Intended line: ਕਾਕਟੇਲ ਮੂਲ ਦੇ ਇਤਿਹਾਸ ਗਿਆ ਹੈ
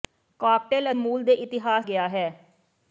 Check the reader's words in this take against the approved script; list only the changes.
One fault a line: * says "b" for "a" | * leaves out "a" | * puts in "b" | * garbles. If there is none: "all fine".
all fine